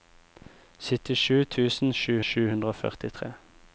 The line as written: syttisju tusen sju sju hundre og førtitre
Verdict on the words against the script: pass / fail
pass